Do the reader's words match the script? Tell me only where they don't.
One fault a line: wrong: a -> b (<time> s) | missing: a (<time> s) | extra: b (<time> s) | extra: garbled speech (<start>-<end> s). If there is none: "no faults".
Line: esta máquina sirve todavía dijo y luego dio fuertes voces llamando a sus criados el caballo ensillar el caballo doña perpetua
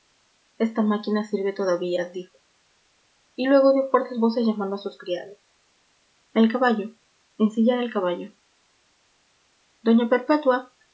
no faults